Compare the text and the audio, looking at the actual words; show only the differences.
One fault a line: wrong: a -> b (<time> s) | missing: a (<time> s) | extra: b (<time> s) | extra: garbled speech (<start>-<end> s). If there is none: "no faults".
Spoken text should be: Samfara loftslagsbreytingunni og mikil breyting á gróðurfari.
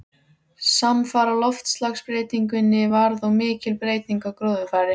extra: varð (2.9 s)